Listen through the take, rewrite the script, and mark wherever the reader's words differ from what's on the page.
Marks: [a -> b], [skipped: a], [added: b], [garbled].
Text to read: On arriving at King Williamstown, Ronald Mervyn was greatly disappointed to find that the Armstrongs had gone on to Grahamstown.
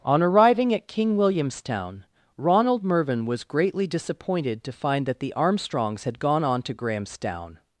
On arriving at King Williamstown, Ronald Mervyn was greatly disappointed to find that the Armstrongs had gone on to Grahamstown.